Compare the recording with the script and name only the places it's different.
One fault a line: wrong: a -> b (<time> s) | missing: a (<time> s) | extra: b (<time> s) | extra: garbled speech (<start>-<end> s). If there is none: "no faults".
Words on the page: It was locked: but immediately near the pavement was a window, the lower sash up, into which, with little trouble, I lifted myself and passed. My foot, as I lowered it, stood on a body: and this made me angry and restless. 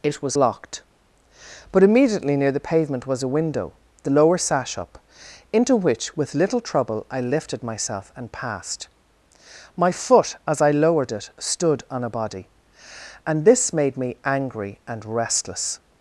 no faults